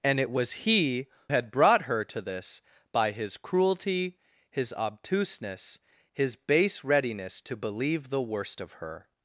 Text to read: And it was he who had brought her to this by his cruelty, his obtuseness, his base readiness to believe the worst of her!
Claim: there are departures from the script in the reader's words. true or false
true